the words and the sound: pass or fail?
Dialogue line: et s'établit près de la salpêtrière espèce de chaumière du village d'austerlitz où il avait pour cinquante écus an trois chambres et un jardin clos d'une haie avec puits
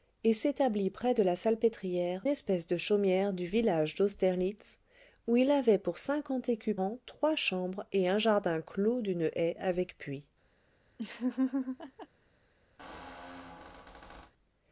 fail